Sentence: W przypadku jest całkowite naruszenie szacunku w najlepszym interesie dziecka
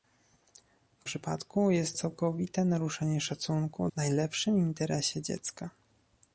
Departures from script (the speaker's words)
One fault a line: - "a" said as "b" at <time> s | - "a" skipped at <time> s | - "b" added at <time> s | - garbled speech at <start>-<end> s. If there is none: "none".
none